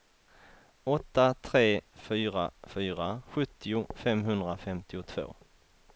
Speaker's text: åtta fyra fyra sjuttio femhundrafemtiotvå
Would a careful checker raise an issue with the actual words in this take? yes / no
yes